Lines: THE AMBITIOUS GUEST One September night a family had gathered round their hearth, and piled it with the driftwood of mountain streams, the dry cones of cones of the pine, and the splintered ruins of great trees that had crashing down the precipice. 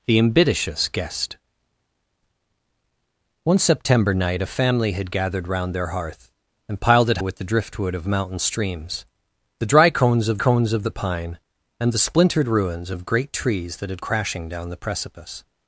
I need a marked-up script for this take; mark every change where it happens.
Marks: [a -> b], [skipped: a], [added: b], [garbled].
THE AMBITIOUS GUEST One September night a family had gathered round their hearth, and piled it with the driftwood of mountain streams, the dry cones of cones of the pine, and the splintered ruins of great trees that had crashing down the precipice.